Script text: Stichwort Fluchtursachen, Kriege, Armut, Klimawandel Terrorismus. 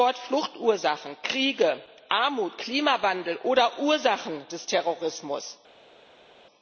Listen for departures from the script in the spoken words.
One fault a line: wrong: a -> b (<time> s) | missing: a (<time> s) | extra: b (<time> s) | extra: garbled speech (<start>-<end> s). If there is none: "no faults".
extra: oder Ursachen des (3.4 s)